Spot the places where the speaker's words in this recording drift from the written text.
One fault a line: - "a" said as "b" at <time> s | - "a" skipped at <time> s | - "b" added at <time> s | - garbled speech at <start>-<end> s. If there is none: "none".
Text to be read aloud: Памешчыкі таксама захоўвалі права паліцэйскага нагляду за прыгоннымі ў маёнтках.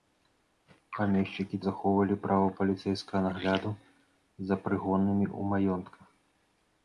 - "таксама" skipped at 1.6 s